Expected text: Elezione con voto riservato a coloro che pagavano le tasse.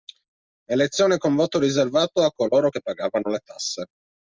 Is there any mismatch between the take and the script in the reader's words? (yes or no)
no